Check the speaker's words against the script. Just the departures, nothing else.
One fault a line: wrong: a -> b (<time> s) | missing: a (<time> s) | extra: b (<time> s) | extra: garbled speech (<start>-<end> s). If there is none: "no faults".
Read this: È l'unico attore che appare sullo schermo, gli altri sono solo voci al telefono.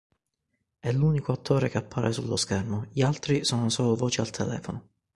no faults